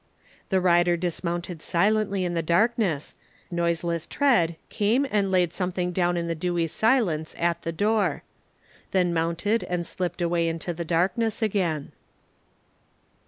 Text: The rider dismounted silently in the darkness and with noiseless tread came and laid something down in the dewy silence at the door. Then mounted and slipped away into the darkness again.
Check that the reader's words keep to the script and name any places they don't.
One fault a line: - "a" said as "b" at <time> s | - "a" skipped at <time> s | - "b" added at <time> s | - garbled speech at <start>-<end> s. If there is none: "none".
- "and with" skipped at 3.1 s